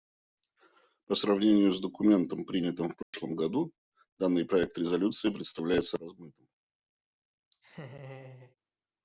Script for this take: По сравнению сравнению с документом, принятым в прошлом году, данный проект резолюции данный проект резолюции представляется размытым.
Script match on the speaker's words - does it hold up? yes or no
no